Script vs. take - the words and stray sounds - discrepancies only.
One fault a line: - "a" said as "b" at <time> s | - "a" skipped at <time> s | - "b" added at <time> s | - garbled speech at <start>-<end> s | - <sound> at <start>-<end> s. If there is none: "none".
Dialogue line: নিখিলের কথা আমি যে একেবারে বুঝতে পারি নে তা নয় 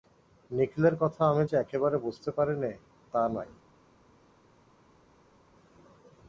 none